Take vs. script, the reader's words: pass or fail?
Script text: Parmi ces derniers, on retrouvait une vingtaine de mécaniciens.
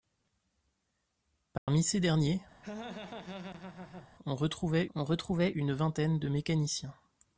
fail